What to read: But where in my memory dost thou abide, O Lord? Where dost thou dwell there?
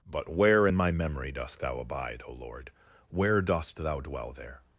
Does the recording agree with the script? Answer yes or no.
yes